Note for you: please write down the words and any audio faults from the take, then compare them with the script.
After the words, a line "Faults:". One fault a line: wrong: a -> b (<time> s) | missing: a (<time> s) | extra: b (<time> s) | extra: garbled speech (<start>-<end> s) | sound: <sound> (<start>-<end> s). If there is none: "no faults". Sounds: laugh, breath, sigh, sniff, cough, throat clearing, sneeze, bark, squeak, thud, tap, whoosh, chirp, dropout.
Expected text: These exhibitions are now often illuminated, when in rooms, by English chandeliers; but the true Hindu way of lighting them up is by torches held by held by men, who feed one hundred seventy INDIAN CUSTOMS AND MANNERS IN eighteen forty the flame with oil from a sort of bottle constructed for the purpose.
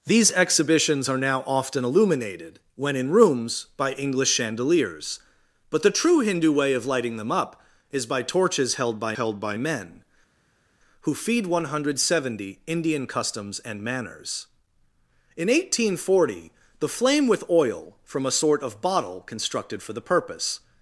These exhibitions are now often illuminated, when in rooms, by English chandeliers; but the true Hindu way of lighting them up is by torches held by held by men, who feed one hundred seventy INDIAN CUSTOMS AND MANNERS IN eighteen forty the flame with oil from a sort of bottle constructed for the purpose.
Faults:
no faults